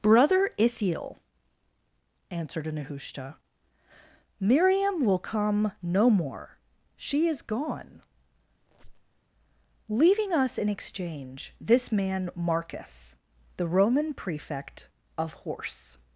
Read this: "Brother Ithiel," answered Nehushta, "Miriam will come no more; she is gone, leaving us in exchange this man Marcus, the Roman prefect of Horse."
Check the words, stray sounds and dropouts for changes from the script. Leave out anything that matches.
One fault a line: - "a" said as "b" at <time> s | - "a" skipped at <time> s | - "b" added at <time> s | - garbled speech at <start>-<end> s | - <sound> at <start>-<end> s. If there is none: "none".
- squeak at 8.6-9.2 s